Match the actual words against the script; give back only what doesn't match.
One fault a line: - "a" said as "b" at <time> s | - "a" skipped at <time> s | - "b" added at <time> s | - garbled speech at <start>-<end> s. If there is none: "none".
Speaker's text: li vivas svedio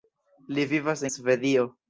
none